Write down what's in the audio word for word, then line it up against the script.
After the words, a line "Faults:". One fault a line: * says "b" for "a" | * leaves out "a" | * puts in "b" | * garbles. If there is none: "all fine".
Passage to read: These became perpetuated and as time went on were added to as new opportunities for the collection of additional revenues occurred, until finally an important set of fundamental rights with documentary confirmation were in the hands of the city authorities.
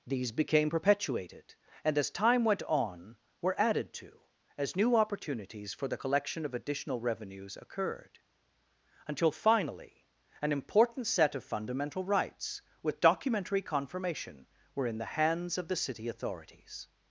These became perpetuated and as time went on were added to as new opportunities for the collection of additional revenues occurred, until finally an important set of fundamental rights with documentary confirmation were in the hands of the city authorities.
Faults:
all fine